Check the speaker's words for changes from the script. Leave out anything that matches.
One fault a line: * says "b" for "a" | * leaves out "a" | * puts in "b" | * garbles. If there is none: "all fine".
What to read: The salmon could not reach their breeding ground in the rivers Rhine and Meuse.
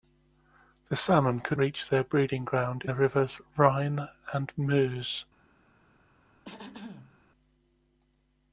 * leaves out "not"
* leaves out "in"